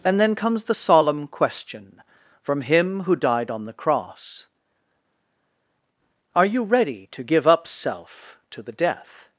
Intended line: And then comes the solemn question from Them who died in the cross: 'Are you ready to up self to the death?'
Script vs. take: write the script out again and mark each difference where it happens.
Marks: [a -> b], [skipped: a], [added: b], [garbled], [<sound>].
And then comes the solemn question from [Them -> Him] who died [in -> on] the cross: 'Are you ready to [added: give] up self to the death?'